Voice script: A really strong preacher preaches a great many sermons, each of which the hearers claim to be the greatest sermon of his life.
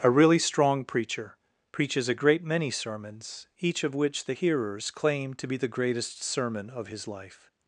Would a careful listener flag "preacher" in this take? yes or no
no